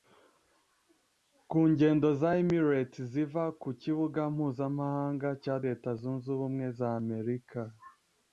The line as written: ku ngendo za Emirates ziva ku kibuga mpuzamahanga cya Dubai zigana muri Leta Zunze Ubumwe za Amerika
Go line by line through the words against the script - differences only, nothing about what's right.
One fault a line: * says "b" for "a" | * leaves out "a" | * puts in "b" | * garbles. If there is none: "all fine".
* leaves out "Dubai zigana muri"